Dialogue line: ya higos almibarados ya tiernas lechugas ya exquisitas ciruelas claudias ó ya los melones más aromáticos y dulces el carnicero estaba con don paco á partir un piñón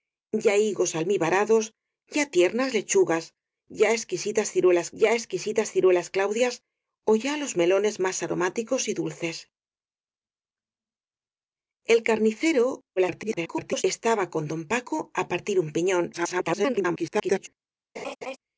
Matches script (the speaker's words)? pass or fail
fail